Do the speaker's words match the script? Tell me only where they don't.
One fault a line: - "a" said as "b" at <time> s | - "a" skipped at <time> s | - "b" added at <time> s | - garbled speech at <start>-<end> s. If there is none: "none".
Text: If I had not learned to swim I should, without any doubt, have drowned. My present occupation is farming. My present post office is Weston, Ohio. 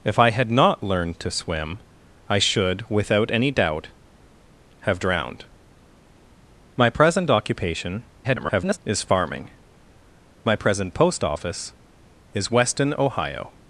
- garbled speech at 8.2-8.8 s